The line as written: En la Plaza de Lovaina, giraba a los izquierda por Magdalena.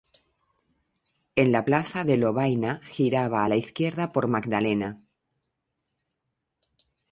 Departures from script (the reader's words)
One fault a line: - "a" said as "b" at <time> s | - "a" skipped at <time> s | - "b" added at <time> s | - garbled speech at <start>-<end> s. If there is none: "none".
- "los" said as "la" at 3.5 s